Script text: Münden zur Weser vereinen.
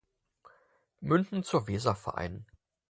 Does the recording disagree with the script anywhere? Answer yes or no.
no